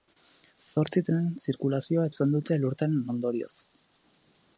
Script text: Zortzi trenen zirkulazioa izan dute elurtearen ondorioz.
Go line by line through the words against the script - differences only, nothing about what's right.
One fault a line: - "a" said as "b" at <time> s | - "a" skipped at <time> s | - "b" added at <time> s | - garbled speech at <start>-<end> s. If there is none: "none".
none